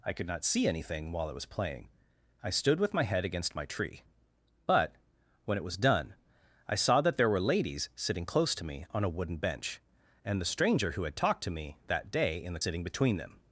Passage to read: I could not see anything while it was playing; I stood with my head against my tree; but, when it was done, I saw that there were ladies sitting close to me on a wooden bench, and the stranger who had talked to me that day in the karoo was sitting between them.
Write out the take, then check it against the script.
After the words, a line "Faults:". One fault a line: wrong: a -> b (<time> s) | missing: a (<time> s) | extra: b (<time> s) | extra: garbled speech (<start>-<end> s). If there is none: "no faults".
I could not see anything while it was playing; I stood with my head against my tree; but, when it was done, I saw that there were ladies sitting close to me on a wooden bench, and the stranger who had talked to me that day in the sitting between them.
Faults:
missing: karoo was (12.6 s)